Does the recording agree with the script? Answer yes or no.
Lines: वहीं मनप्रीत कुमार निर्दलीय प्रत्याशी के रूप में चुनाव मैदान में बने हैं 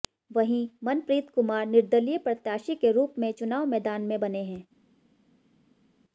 yes